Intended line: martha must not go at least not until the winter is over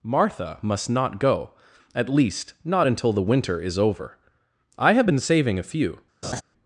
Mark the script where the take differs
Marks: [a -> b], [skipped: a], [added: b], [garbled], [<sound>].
martha must not go at least not until the winter is over [added: i have been saving a few] [laugh]